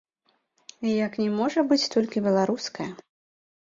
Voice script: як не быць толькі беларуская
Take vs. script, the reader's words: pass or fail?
fail